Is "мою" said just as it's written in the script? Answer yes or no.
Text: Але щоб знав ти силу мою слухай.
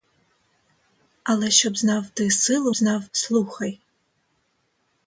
no